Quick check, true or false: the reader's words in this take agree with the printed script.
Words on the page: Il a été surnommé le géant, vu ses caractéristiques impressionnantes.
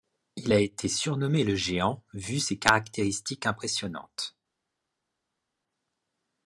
true